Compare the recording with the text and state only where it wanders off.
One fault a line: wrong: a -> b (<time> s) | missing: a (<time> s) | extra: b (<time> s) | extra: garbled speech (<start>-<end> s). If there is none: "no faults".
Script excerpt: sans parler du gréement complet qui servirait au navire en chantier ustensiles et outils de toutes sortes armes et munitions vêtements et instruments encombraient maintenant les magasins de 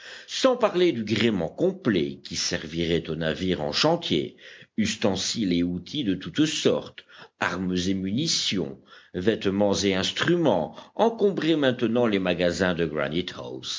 no faults